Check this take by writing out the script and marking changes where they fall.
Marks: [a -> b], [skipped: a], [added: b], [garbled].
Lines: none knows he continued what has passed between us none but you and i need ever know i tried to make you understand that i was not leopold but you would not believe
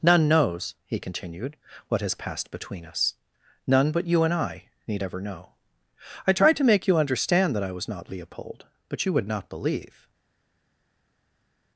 none knows he continued what has passed between us none but you and i need ever know i tried to make you understand that i was not leopold but you would not believe